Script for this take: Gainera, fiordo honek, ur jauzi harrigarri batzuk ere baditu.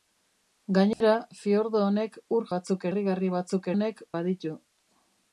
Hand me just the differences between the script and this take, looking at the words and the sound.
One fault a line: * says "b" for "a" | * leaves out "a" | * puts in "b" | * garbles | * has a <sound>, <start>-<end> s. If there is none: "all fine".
* has a dropout, 0.9-1.0 s
* says "batzuk" for "jauzi"
* says "honek" for "ere"